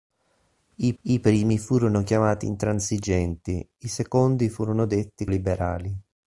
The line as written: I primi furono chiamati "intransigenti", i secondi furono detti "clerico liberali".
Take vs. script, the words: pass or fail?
fail